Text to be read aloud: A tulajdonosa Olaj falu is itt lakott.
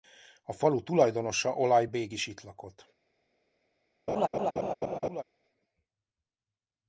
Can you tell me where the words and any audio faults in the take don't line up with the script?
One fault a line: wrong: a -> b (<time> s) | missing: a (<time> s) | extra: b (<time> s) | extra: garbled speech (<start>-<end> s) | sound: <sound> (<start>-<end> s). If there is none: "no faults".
extra: falu (0.5 s)
wrong: falu -> bég (1.8 s)
sound: laugh (4.1-5.2 s)